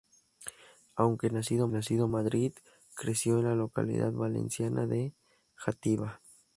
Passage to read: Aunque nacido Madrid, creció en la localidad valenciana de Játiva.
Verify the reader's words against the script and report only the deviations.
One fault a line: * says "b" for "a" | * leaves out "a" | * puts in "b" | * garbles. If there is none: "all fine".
* puts in "nacido"